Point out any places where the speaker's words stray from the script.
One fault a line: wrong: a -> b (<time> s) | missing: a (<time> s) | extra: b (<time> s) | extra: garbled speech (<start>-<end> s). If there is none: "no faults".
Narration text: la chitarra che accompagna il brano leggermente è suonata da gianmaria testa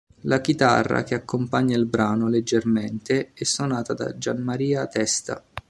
no faults